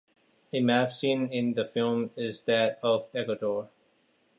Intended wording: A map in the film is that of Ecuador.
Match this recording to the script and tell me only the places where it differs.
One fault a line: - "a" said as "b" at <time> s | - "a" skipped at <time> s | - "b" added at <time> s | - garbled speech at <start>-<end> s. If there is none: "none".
- "seen" added at 0.9 s